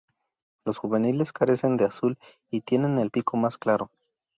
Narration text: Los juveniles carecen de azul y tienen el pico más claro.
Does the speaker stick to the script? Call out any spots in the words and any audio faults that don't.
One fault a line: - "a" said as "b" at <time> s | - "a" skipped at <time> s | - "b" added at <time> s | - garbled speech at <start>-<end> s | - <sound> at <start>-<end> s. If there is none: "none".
none